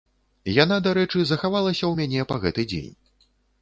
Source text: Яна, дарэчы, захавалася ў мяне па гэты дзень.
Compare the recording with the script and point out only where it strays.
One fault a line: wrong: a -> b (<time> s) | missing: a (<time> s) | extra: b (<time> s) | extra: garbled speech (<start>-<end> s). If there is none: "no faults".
no faults